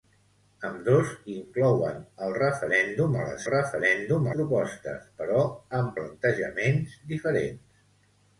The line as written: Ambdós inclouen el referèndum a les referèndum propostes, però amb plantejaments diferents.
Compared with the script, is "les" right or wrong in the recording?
right